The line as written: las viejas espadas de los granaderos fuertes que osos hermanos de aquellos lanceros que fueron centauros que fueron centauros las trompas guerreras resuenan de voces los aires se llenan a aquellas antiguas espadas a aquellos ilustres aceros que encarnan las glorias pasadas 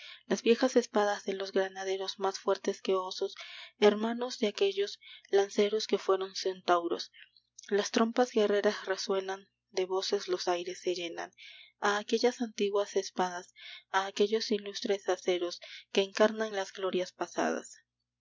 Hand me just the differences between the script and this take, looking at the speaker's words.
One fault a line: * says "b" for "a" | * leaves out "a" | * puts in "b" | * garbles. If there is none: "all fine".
* puts in "más"
* leaves out "que fueron centauros"